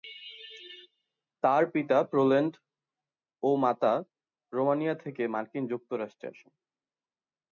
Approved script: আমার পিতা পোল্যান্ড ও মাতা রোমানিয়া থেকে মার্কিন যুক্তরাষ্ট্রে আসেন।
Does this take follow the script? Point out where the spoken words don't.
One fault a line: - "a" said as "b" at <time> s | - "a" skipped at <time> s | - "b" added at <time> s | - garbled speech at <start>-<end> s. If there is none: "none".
- "আমার" said as "তার" at 1.4 s